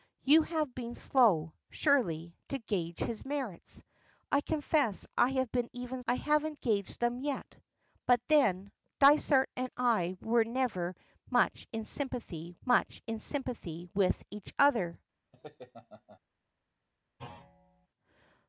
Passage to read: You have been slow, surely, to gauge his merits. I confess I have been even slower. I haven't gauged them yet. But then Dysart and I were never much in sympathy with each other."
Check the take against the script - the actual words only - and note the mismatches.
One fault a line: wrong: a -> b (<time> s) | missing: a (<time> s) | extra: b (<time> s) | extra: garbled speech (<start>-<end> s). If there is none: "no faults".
missing: slower (6.0 s)
extra: much in sympathy (12.7 s)